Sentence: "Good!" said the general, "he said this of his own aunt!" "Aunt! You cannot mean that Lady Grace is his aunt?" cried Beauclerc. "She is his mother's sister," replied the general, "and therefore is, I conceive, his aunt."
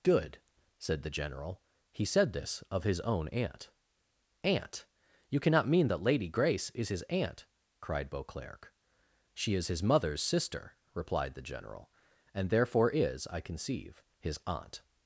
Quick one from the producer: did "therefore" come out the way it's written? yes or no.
yes